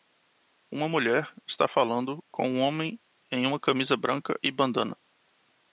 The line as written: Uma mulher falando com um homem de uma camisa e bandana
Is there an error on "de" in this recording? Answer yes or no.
yes